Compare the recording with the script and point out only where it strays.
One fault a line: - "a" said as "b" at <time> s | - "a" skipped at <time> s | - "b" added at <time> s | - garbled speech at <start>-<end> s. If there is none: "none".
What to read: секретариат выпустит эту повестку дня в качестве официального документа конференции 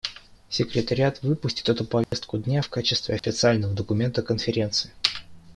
none